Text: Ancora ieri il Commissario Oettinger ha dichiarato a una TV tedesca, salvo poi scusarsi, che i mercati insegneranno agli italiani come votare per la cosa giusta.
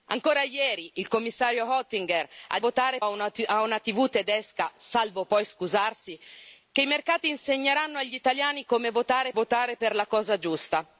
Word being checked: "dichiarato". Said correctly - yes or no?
no